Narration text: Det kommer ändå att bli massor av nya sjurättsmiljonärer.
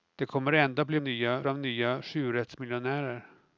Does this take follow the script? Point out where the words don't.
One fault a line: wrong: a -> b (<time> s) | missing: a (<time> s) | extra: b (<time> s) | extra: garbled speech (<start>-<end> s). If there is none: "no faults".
wrong: massor -> nya (1.0 s)